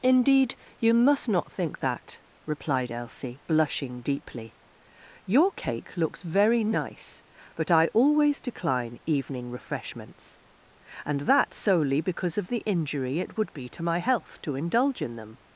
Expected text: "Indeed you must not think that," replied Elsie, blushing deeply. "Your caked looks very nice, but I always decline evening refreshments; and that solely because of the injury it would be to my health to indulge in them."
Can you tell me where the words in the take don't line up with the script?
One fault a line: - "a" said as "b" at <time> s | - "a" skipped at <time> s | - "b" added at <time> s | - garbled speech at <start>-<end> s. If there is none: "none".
- "caked" said as "cake" at 5.5 s